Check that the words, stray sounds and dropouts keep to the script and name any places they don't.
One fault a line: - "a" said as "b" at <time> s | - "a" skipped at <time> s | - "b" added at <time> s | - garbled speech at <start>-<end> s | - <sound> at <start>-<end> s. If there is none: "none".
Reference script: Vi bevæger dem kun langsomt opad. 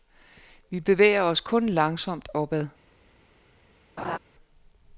- "dem" said as "os" at 1.2 s
- laugh at 4.0-4.2 s